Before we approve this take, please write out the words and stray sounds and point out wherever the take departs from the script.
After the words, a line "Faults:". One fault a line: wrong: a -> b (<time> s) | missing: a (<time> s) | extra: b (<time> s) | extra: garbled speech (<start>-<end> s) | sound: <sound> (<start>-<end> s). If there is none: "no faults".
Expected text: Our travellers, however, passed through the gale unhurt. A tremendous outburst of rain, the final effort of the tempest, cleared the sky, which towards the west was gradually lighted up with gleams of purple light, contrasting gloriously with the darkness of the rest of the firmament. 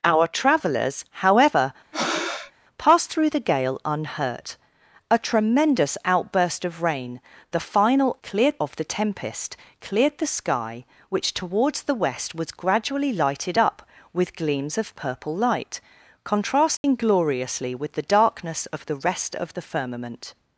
Our travellers, however, passed through the gale unhurt. A tremendous outburst of rain, the final cleared of the tempest, cleared the sky, which towards the west was gradually lighted up with gleams of purple light, contrasting gloriously with the darkness of the rest of the firmament.
Faults:
sound: breath (1.9-2.5 s)
wrong: effort -> cleared (8.2 s)
sound: dropout (16.8-16.8 s)